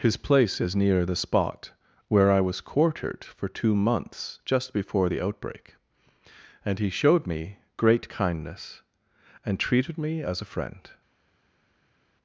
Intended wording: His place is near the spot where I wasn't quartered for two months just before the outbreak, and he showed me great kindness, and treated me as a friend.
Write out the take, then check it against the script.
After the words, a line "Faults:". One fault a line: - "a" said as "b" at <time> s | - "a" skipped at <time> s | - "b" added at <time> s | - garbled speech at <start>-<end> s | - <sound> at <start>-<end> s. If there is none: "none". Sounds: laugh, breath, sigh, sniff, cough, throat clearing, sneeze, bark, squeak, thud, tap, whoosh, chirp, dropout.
His place is near the spot where I was quartered for two months just before the outbreak, and he showed me great kindness, and treated me as a friend.
Faults:
- "wasn't" said as "was" at 2.4 s